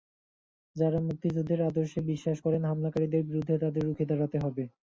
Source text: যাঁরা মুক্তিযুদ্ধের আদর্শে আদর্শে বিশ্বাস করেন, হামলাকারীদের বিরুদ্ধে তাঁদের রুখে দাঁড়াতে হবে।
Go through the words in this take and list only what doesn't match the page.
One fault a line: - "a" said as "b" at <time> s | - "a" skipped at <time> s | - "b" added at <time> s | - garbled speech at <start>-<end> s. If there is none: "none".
- "আদর্শে" skipped at 2.0 s